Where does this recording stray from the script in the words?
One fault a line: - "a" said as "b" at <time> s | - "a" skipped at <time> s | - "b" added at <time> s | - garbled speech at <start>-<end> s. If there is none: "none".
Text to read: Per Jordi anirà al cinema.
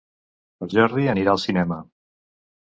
none